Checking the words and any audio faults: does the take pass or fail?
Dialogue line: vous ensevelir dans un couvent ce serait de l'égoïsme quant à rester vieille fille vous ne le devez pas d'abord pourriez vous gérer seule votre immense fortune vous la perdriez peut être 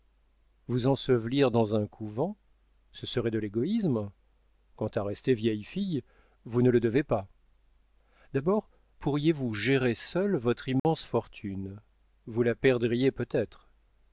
fail